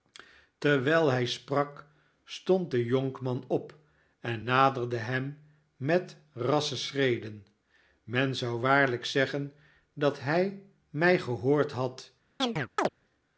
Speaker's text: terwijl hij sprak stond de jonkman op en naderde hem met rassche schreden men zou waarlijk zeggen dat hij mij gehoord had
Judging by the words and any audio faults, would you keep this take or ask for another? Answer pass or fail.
fail